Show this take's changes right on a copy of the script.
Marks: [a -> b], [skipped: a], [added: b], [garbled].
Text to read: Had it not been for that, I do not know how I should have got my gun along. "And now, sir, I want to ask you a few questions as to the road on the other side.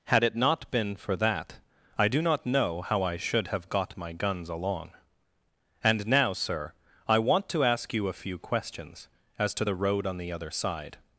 Had it not been for that, I do not know how I should have got my [gun -> guns] along. "And now, sir, I want to ask you a few questions as to the road on the other side.